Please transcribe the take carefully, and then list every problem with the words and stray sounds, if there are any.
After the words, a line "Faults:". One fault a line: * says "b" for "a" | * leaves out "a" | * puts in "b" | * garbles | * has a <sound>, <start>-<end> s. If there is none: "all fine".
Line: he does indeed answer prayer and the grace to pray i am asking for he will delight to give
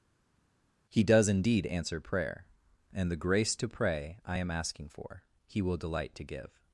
he does indeed answer prayer and the grace to pray i am asking for he will delight to give
Faults:
all fine